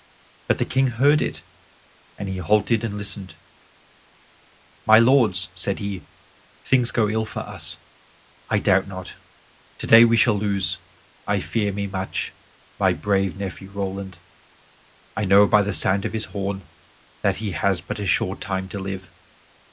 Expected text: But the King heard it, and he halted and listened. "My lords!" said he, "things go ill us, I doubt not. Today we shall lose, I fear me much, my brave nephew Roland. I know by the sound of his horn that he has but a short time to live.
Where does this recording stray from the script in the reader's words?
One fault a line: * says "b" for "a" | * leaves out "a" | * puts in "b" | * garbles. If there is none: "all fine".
* puts in "for"